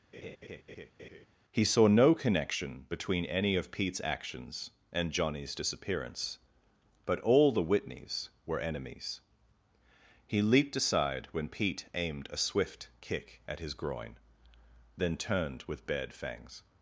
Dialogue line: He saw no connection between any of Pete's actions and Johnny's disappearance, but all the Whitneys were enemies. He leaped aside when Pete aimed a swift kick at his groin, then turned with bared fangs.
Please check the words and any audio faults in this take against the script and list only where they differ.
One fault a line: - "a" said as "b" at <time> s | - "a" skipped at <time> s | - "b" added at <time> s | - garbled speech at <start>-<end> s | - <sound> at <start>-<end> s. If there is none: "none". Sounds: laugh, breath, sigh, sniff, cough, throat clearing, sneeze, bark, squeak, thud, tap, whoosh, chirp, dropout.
- laugh at 0.1-1.3 s